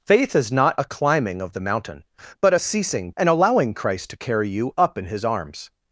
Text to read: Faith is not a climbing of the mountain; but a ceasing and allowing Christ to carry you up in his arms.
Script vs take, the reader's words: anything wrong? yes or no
no